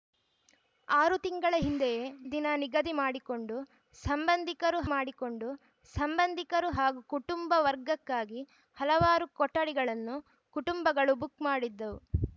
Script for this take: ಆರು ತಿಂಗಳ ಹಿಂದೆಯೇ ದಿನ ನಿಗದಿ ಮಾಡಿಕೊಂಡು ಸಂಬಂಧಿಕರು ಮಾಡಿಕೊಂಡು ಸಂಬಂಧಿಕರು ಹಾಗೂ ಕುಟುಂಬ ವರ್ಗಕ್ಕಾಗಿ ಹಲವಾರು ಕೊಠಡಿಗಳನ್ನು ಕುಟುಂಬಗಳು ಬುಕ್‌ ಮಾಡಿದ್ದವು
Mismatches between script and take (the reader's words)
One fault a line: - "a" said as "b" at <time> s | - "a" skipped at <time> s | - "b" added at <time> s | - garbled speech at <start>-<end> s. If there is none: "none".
none